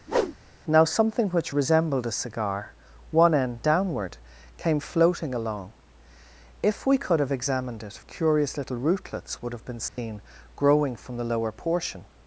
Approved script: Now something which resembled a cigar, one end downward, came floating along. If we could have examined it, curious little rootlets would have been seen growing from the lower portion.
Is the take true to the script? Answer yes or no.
yes